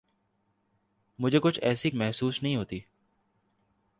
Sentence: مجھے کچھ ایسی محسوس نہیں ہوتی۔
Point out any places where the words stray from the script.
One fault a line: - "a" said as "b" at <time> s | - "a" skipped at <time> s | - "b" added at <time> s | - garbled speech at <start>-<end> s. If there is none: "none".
none